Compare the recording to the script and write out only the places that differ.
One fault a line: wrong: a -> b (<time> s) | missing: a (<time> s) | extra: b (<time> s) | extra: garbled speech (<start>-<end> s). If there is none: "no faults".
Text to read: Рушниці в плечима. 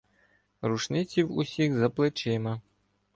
extra: усіх за (1.4 s)